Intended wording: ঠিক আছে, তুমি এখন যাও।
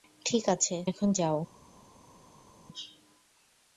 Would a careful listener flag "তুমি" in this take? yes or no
yes